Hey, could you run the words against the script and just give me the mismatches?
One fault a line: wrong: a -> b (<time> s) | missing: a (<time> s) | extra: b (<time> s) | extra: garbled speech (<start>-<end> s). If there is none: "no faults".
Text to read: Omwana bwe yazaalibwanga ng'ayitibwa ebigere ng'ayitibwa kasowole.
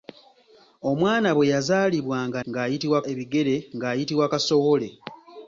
no faults